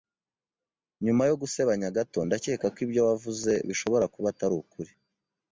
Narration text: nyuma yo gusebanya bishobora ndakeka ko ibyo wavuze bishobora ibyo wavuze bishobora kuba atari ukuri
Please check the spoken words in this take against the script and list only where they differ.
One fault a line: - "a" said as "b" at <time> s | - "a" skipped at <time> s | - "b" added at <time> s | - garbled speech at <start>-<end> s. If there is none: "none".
- "bishobora" said as "gato" at 2.0 s
- "ibyo wavuze bishobora" skipped at 4.1 s